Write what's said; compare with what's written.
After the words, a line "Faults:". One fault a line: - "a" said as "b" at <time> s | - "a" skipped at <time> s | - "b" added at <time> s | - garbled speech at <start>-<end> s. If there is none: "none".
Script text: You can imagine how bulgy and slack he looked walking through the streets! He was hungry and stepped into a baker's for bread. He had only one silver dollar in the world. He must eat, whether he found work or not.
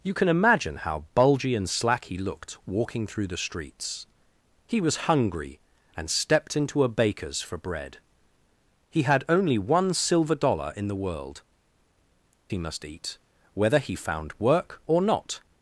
You can imagine how bulgy and slack he looked walking through the streets! He was hungry and stepped into a baker's for bread. He had only one silver dollar in the world. He must eat, whether he found work or not.
Faults:
none